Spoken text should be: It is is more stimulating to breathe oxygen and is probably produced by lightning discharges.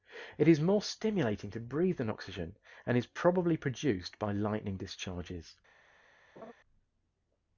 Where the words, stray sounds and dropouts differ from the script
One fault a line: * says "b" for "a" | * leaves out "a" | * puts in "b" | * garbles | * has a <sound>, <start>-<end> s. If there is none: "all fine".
* leaves out "is"
* puts in "than"
* has a laugh, 6.4-6.5 s